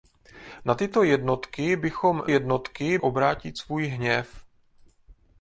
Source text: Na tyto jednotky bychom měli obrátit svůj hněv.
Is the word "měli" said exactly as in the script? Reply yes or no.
no